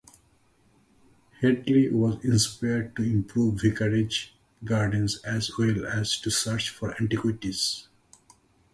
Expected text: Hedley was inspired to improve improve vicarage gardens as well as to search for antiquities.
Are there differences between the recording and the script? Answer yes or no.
yes